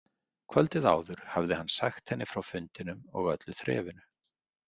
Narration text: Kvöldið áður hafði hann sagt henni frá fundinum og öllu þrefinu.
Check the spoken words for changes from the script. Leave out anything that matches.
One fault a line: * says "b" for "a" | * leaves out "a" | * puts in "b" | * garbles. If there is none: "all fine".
all fine